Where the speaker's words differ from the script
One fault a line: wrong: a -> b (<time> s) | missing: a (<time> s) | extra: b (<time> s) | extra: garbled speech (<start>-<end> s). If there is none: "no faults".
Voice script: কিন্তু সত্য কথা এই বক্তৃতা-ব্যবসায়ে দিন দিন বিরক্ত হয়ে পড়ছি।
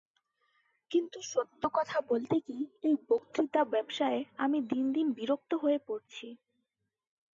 extra: বলতে কি (2.0 s)
extra: আমি (4.4 s)